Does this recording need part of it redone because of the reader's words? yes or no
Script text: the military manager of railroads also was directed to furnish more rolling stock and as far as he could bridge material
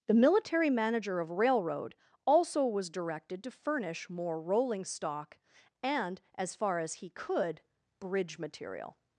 yes